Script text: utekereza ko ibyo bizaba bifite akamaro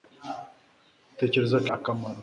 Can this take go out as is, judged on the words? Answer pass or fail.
fail